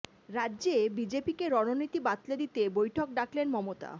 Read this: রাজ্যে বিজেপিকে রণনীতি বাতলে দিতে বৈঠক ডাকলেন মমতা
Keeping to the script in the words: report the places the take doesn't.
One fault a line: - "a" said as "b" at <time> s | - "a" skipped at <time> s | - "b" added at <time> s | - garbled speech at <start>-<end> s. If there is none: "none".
none